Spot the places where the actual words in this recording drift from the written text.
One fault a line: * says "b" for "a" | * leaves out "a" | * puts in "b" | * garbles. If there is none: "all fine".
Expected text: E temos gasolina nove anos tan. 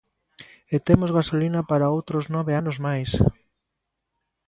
* puts in "para outros"
* says "máis" for "tan"